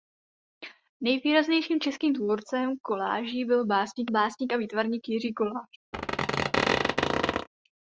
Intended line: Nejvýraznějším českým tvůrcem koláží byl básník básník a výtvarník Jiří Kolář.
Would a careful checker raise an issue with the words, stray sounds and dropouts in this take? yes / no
yes